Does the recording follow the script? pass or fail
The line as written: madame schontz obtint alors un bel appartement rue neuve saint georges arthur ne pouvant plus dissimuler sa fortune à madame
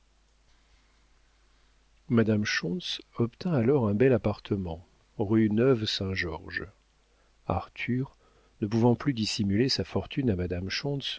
pass